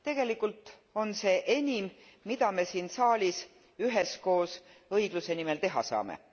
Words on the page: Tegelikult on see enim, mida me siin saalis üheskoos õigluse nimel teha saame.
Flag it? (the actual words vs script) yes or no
no